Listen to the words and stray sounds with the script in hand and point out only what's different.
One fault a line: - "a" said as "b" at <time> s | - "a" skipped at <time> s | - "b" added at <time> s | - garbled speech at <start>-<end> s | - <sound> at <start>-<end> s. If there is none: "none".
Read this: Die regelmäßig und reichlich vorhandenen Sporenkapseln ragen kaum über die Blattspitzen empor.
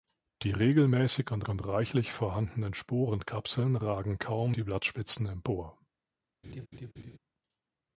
- "und" added at 1.5 s
- "über" skipped at 4.6 s
- laugh at 6.4-7.2 s